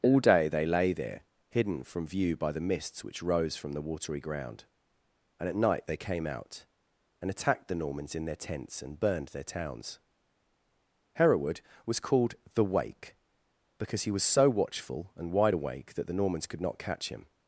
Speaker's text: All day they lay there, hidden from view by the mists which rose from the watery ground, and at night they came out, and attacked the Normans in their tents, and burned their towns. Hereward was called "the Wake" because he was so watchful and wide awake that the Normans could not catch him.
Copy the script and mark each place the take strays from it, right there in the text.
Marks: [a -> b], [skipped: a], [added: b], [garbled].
All day they lay there, hidden from view by the mists which rose from the watery ground, and at night they came out, and attacked the Normans in their tents, and burned their towns. Hereward was called "the Wake" because he was so watchful and wide awake that the Normans could not catch him.